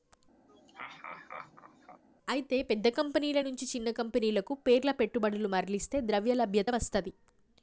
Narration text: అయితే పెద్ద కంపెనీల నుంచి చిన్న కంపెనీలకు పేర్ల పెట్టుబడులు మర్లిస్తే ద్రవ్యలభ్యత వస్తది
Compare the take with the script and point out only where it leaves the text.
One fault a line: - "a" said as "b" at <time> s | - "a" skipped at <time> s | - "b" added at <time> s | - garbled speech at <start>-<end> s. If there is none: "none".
none